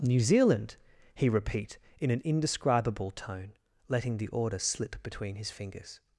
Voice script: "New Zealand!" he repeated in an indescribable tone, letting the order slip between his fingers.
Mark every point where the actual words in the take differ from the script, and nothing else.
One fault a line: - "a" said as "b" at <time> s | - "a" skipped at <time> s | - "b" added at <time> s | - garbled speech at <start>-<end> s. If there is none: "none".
- "repeated" said as "repeat" at 1.3 s